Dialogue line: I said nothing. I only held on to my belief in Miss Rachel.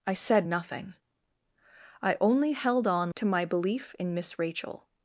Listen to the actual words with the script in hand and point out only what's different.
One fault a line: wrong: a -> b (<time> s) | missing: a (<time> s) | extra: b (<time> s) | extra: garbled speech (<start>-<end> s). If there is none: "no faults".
no faults